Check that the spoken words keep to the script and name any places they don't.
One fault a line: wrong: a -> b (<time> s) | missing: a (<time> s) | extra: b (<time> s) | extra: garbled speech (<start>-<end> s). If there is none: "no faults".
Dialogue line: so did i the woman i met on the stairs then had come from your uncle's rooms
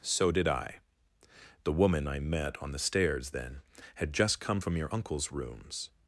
extra: just (4.1 s)